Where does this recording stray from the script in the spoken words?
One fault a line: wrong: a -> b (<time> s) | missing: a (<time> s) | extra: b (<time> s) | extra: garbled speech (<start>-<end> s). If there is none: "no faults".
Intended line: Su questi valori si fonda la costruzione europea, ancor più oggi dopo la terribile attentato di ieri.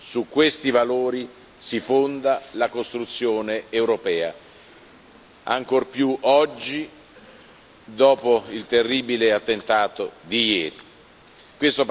wrong: la -> il (8.5 s)